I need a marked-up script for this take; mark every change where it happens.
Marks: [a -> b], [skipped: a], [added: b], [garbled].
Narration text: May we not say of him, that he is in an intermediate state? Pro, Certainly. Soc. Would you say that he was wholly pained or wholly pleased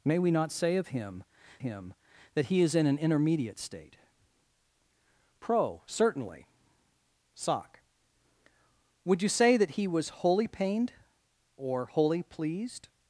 May we not say of him, [added: him] that he is in an intermediate state? Pro, Certainly. Soc. Would you say that he was wholly pained or wholly pleased